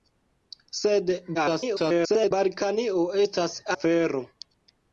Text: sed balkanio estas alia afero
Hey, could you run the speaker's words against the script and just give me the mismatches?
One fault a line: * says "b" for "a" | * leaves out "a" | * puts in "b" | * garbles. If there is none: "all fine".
* garbles
* leaves out "alia"